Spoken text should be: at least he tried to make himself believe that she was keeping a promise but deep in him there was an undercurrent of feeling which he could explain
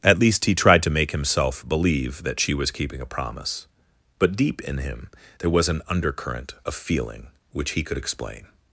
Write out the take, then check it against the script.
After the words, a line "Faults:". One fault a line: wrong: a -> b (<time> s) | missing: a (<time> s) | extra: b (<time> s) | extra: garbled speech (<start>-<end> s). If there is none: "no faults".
at least he tried to make himself believe that she was keeping a promise but deep in him there was an undercurrent of feeling which he could explain
Faults:
no faults